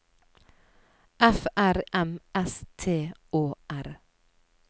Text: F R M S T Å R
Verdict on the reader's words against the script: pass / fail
pass